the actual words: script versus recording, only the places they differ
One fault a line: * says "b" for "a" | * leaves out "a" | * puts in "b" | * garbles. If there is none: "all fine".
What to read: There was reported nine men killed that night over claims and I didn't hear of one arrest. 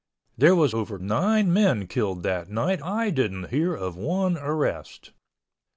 * says "over" for "reported"
* leaves out "over claims and"